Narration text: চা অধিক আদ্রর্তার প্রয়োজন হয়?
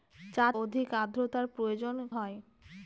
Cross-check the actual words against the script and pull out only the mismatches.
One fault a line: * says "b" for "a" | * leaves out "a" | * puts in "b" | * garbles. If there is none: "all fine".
all fine